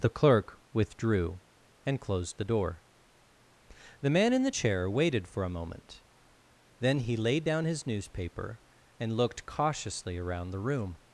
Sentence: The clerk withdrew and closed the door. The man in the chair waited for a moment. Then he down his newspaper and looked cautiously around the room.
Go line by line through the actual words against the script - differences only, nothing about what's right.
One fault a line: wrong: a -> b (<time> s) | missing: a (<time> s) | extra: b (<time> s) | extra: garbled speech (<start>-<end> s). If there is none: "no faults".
extra: laid (7.2 s)